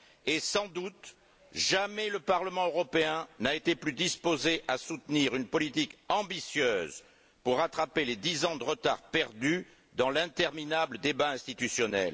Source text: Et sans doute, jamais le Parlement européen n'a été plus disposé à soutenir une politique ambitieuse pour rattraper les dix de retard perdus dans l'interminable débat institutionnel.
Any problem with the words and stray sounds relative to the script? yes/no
yes